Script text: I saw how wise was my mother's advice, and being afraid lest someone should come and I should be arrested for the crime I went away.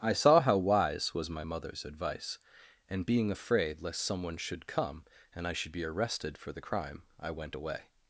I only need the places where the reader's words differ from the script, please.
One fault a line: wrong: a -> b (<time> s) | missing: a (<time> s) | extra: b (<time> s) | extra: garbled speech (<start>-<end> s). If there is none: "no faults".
no faults